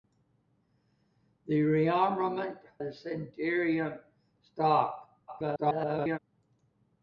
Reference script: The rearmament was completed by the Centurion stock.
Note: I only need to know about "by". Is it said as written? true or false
false